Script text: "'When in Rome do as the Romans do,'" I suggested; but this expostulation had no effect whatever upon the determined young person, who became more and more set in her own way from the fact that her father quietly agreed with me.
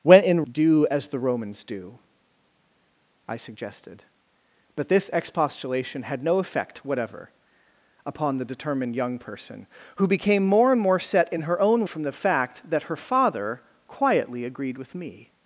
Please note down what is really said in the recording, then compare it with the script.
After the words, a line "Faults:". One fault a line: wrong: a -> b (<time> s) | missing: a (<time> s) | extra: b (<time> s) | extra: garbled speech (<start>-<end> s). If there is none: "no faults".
"'When in Do as the Romans do,'" I suggested; but this expostulation had no effect whatever upon the determined young person, who became more and more set in her own from the fact that her father quietly agreed with me.
Faults:
missing: Rome (0.4 s)
missing: way (11.9 s)